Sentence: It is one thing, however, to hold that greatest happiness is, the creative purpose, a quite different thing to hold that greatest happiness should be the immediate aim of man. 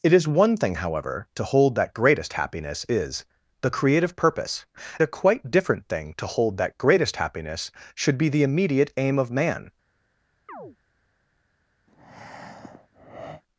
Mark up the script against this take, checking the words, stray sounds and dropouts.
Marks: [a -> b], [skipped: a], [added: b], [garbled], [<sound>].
It is one thing, however, to hold that greatest happiness is, the creative purpose, a quite different thing to hold that greatest happiness should be the immediate aim of man. [chirp] [breath]